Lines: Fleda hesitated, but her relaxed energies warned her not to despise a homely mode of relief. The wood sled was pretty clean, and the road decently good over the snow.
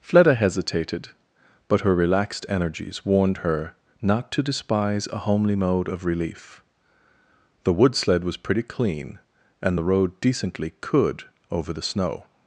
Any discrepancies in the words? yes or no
yes